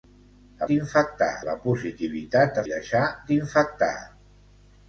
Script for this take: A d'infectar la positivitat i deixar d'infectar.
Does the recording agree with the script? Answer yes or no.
yes